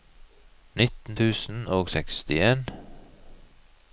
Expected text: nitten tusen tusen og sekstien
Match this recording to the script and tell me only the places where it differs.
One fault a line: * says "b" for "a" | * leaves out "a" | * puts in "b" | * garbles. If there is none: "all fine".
* leaves out "tusen"